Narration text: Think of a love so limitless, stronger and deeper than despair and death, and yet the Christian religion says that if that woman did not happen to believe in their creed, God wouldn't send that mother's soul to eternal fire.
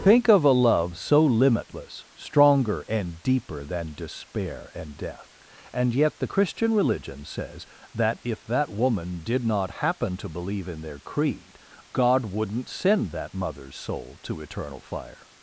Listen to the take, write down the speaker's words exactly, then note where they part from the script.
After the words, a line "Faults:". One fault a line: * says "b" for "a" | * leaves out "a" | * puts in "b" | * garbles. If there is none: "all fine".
Think of a love so limitless, stronger and deeper than despair and death, and yet the Christian religion says that if that woman did not happen to believe in their creed, God wouldn't send that mother's soul to eternal fire.
Faults:
all fine